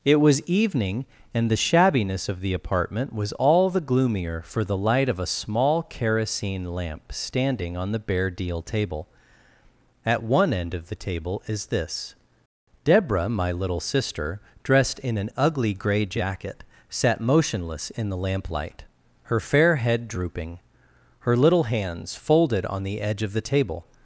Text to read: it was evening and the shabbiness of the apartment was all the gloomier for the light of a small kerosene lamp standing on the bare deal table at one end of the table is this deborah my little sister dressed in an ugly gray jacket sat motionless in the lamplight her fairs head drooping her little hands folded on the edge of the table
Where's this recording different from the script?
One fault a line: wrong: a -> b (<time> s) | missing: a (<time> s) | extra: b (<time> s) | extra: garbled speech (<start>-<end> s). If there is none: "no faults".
wrong: fairs -> fair (19.4 s)